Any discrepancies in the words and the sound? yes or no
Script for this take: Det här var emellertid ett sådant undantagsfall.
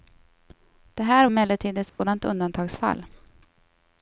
yes